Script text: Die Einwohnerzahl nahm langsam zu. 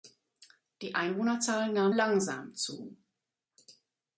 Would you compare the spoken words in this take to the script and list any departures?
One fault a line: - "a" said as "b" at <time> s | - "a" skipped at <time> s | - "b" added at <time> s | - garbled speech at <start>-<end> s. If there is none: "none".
none